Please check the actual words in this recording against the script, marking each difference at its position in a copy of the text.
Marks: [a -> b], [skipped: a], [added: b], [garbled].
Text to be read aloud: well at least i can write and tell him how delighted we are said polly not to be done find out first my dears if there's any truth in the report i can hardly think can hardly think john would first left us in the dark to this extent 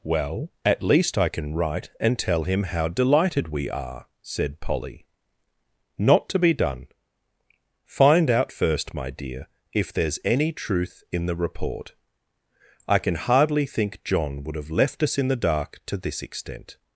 well at least i can write and tell him how delighted we are said polly not to be done find out first my [dears -> dear] if there's any truth in the report i can hardly think [skipped: can hardly think] john would [first -> have] left us in the dark to this extent